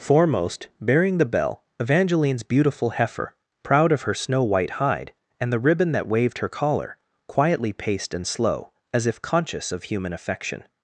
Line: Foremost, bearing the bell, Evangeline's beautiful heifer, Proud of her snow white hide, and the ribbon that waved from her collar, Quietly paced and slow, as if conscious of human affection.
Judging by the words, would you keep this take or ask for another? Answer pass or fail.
fail